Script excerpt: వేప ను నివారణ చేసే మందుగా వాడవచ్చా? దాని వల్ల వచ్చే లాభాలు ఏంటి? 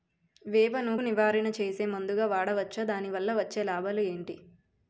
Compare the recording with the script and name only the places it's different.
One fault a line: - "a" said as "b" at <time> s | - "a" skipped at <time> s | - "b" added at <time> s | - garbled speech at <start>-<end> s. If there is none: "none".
none